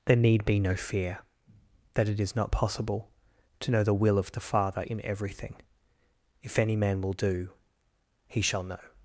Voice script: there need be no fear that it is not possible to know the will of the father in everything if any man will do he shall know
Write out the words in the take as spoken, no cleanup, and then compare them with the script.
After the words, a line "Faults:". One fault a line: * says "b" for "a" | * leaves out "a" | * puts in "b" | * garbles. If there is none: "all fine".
there need be no fear that it is not possible to know the will of the father in everything if any man will do he shall know
Faults:
all fine